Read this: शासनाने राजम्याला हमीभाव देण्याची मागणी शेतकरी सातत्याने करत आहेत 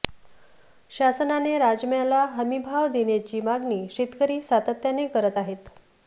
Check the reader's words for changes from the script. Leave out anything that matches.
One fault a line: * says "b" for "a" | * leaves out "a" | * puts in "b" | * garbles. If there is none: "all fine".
all fine